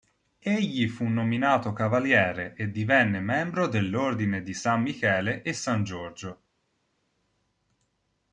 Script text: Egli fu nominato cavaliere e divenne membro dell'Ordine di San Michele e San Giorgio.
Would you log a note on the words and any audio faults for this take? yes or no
no